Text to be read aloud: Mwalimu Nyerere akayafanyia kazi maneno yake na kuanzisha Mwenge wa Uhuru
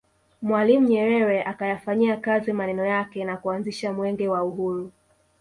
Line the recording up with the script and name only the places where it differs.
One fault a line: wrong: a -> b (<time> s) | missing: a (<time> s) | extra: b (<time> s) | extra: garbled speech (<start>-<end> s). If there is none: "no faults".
no faults